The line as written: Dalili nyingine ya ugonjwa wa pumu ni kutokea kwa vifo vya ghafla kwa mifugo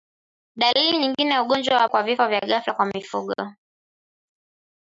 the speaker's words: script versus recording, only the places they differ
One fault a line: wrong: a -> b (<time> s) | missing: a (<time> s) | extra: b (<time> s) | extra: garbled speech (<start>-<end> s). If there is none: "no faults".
missing: pumu ni kutokea (1.9 s)